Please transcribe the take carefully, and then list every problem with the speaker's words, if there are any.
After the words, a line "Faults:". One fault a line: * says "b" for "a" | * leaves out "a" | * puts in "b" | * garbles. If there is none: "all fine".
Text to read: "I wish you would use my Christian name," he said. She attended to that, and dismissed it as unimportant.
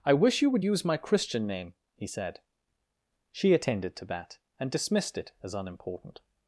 "I wish you would use my Christian name," he said. She attended to that, and dismissed it as unimportant.
Faults:
all fine